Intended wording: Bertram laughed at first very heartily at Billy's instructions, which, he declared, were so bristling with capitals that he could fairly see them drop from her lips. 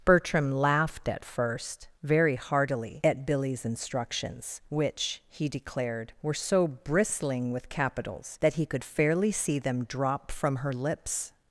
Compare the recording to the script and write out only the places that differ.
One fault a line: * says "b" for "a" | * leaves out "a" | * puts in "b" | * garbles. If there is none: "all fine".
all fine